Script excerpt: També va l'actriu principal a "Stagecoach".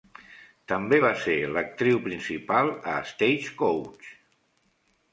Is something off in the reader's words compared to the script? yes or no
yes